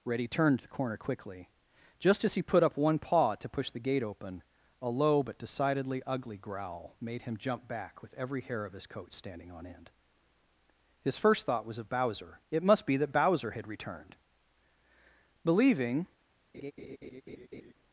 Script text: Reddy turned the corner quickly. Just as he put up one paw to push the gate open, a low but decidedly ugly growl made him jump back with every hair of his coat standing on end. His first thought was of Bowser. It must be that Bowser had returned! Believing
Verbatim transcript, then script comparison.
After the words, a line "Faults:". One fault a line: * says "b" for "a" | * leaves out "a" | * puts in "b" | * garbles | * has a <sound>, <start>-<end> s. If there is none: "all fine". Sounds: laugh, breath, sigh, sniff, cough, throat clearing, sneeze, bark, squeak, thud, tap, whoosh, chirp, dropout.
Reddy turned the corner quickly. Just as he put up one paw to push the gate open, a low but decidedly ugly growl made him jump back with every hair of his coat standing on end. His first thought was of Bowser. It must be that Bowser had returned! Believing
Faults:
* has a laugh, 16.5-17.7 s